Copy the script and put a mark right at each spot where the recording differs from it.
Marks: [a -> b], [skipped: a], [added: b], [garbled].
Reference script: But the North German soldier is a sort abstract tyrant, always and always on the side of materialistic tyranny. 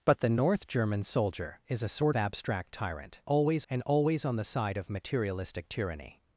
But the North German soldier is a sort abstract tyrant, always and always on the side of materialistic tyranny.